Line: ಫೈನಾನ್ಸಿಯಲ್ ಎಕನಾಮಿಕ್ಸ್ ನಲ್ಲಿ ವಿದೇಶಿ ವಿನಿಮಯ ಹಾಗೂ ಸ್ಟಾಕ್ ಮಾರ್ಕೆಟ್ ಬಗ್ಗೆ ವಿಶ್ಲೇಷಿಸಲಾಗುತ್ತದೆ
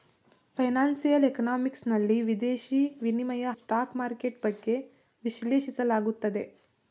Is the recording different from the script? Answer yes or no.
yes